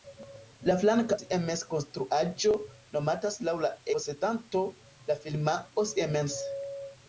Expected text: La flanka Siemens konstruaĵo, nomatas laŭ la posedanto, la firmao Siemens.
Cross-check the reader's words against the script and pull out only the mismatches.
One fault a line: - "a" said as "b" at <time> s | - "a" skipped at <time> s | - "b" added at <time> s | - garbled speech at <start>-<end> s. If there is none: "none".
none